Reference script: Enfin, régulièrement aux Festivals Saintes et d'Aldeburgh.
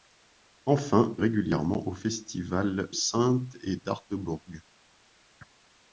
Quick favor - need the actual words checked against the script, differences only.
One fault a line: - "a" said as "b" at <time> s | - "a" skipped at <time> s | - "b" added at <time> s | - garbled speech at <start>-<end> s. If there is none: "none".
none